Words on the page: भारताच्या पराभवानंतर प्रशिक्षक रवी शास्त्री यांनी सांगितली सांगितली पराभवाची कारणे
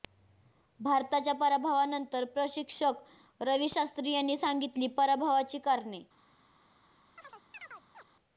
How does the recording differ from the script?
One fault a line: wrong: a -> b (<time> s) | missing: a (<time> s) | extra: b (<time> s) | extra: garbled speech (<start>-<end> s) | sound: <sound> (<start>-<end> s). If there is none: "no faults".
missing: सांगितली (4.9 s)
sound: chirp (7.2-8.0 s)